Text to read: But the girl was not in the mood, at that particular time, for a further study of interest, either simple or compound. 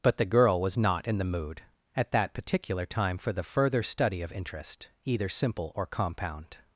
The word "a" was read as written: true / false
false